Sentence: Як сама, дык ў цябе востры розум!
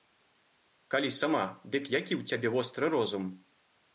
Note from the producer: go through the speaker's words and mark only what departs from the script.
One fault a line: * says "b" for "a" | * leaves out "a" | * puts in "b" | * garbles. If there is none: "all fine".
* says "Калі" for "Як"
* puts in "які"